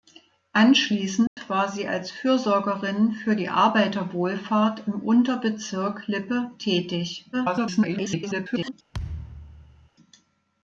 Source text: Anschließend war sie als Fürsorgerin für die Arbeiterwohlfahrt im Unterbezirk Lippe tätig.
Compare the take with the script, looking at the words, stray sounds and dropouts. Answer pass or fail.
fail